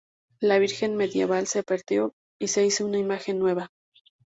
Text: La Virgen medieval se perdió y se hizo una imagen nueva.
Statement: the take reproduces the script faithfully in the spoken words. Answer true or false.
true